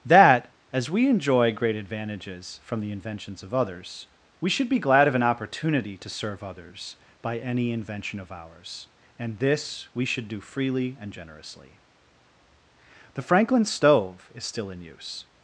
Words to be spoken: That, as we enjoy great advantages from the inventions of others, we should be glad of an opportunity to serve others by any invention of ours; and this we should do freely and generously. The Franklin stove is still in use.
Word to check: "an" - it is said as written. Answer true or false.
true